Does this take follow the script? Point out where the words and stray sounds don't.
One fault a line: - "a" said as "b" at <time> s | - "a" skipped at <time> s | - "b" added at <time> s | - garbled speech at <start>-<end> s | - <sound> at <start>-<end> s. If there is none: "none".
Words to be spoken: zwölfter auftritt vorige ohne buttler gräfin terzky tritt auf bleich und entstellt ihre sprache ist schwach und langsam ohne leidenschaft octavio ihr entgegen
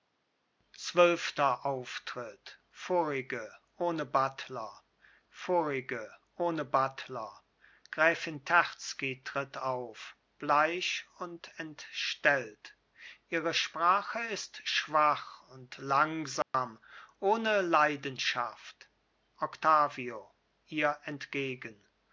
- "vorige ohne buttler" added at 5.3 s
- dropout at 16.4-16.5 s